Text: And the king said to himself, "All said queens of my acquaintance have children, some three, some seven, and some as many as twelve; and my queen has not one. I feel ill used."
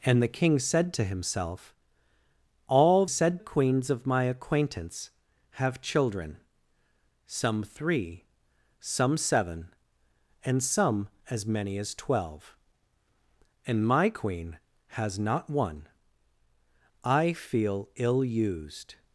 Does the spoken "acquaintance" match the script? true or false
true